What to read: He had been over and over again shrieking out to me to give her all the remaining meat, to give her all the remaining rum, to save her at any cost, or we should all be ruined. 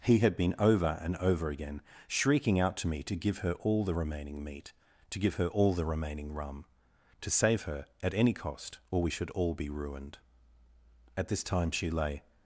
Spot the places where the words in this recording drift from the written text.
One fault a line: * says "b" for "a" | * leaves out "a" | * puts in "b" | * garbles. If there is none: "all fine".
* puts in "At this time she lay"